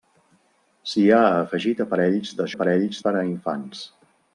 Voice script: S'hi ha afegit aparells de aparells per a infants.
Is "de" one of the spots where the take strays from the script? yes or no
no